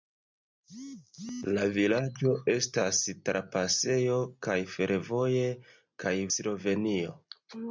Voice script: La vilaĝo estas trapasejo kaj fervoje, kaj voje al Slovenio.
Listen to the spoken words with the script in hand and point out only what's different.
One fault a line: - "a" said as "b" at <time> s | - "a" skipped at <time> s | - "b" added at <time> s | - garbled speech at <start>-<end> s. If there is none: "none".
- "voje al" skipped at 6.2 s